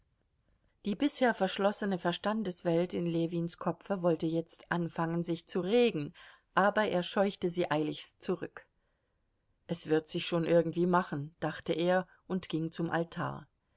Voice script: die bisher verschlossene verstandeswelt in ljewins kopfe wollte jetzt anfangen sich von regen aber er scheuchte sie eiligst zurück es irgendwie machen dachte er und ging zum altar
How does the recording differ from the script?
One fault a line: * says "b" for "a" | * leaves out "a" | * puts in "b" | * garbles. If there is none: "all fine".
* says "zu" for "von"
* puts in "wird sich schon"